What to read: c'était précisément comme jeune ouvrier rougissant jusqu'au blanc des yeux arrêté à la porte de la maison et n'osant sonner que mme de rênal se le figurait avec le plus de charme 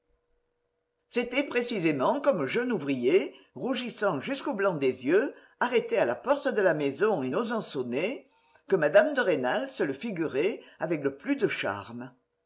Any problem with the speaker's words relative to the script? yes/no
no